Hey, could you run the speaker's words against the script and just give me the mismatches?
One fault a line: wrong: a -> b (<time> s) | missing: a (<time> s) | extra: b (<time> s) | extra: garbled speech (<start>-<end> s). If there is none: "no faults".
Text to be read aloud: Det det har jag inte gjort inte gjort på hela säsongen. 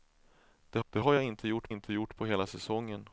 no faults